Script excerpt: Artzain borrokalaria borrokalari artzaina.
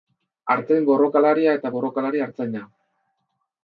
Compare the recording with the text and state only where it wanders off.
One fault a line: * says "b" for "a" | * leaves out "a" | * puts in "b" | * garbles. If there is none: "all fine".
* puts in "eta"